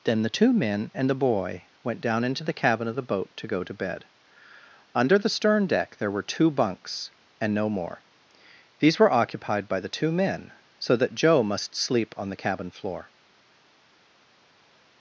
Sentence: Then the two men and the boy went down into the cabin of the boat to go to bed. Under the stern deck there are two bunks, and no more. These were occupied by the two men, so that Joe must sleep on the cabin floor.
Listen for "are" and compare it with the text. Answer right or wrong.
wrong